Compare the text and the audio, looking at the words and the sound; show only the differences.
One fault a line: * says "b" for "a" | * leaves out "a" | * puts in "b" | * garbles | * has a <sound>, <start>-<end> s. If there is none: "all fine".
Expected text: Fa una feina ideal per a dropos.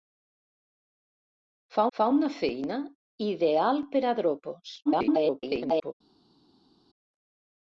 * puts in "fa"
* garbles